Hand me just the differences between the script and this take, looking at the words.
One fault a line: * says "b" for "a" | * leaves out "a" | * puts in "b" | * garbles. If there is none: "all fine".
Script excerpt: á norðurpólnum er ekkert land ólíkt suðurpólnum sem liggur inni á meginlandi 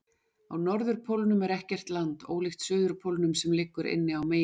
all fine